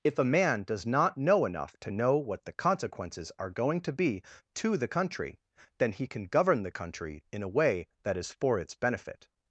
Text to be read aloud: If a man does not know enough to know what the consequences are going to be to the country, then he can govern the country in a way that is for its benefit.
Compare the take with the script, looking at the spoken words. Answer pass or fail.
pass